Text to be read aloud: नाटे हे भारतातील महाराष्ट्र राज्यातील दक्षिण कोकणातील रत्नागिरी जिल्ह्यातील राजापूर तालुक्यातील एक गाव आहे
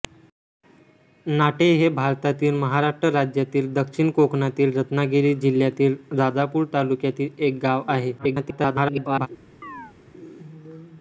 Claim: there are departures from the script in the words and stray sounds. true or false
true